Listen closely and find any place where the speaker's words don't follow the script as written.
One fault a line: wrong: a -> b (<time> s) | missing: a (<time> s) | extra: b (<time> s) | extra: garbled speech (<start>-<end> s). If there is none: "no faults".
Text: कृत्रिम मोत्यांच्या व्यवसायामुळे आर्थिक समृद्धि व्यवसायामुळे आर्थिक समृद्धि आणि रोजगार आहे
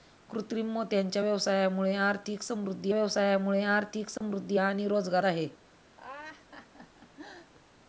no faults